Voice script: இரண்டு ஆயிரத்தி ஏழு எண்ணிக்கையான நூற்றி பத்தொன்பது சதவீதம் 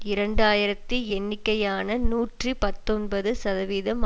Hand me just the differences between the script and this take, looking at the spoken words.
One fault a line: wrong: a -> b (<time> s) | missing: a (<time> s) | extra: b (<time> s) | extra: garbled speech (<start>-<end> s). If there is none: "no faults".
missing: ஏழு (1.0 s)